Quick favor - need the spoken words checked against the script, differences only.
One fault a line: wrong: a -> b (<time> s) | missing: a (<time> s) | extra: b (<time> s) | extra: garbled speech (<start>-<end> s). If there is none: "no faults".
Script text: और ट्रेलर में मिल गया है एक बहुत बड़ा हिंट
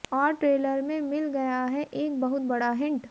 no faults